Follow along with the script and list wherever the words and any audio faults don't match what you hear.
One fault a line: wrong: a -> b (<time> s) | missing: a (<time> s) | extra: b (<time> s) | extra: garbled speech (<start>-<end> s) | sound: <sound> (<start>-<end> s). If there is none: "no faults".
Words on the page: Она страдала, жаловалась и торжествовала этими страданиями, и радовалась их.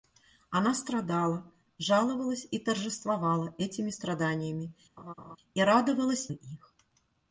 sound: laugh (5.0-5.4 s)